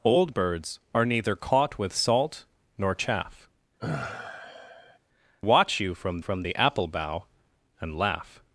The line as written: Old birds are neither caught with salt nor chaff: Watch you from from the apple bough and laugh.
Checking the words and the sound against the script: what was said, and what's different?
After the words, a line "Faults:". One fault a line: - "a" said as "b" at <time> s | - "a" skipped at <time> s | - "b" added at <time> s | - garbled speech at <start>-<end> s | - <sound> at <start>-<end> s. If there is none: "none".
Old birds are neither caught with salt nor chaff: Watch you from from the apple bough and laugh.
Faults:
- sigh at 3.8-5.0 s